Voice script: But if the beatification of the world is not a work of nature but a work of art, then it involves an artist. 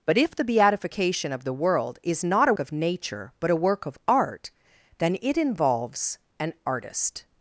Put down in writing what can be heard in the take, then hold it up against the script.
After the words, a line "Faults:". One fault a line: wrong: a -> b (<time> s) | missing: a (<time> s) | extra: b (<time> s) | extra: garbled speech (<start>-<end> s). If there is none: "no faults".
But if the beatification of the world is not a of nature but a work of art, then it involves an artist.
Faults:
missing: work (2.5 s)